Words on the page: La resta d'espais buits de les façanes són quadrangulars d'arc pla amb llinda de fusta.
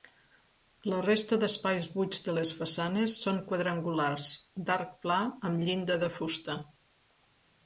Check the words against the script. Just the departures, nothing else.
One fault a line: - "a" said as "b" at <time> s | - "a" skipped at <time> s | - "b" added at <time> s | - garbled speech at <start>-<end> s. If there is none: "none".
none